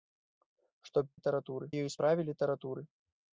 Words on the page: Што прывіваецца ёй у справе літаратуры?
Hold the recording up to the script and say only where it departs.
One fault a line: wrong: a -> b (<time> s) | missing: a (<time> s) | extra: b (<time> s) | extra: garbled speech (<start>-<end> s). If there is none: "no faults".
wrong: прывіваецца -> літаратуры (1.2 s)